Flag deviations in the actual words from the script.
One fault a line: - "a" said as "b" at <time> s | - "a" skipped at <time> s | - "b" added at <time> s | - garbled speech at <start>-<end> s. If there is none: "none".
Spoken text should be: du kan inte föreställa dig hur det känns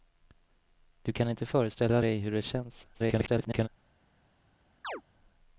- garbled speech at 2.9-3.7 s